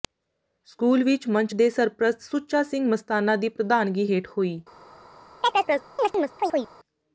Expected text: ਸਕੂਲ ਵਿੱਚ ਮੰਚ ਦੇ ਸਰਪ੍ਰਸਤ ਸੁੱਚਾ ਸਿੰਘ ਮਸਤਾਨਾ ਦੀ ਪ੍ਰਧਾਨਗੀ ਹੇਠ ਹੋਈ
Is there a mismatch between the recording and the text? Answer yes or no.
no